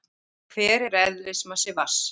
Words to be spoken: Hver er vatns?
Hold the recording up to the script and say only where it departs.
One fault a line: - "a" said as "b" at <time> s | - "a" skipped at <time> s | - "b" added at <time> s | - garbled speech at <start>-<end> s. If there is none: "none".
- "eðlismassi" added at 1.0 s